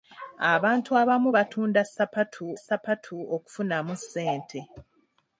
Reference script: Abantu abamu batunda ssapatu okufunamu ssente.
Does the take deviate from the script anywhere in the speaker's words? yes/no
yes